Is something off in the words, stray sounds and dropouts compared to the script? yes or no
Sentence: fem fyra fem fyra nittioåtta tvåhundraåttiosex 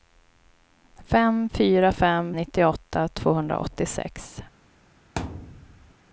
yes